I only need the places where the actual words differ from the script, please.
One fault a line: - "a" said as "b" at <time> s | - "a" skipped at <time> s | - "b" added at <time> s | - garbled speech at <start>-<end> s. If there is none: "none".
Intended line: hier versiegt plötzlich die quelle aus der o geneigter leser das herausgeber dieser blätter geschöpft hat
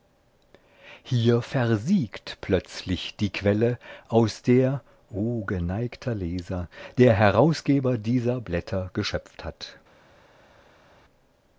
- "das" said as "der" at 7.0 s